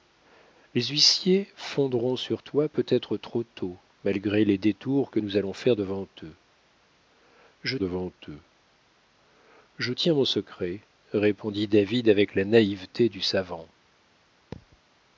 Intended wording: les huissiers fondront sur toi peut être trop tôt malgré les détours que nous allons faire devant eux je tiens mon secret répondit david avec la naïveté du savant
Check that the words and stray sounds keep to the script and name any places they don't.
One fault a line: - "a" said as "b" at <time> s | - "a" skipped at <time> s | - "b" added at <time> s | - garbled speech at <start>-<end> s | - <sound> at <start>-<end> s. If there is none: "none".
- "devant eux je" added at 7.8 s
- thud at 14.5-14.8 s